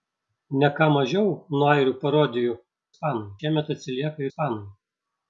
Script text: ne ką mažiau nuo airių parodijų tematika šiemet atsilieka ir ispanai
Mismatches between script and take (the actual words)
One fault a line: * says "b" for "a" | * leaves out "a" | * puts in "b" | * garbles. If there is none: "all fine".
* says "ispanai" for "tematika"
* leaves out "ir"